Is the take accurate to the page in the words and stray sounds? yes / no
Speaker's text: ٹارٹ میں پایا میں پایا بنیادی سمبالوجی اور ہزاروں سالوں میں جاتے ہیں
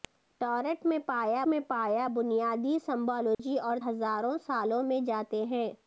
no